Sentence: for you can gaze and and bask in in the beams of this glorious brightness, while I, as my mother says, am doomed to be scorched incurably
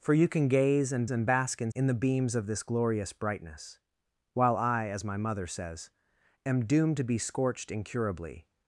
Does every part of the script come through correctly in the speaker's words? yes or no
yes